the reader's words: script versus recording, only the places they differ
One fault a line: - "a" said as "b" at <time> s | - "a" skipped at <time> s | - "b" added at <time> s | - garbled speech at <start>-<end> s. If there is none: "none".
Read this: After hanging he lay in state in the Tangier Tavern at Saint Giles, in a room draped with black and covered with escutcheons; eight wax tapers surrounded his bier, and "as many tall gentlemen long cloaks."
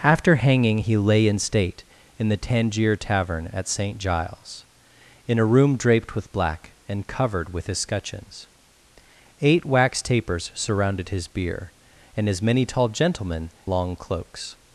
none